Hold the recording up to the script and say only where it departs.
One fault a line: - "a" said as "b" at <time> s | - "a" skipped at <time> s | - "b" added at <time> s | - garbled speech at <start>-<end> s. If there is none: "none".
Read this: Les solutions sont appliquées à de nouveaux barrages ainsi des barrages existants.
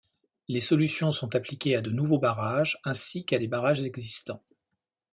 - "qu'à" added at 3.2 s